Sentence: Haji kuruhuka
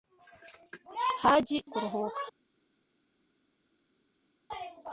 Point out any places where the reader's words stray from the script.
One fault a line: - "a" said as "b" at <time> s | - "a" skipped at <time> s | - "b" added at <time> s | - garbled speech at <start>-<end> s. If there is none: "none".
none